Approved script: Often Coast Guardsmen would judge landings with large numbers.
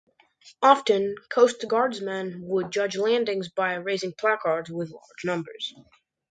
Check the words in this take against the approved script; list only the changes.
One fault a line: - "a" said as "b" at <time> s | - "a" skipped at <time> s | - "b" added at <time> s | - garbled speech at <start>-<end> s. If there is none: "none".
- "by raising placards" added at 3.5 s